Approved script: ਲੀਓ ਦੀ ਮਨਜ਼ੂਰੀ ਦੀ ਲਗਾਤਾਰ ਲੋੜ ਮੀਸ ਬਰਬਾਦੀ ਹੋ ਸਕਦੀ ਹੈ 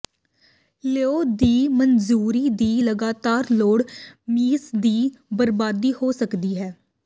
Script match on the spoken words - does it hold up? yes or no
no